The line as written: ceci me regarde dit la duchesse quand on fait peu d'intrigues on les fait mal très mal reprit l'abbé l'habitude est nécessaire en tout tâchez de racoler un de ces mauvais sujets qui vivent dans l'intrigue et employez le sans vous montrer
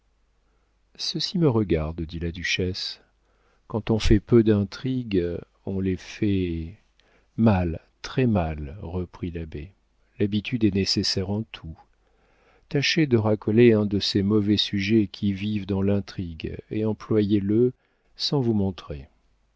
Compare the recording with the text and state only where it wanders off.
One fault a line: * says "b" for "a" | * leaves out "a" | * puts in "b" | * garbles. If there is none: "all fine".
all fine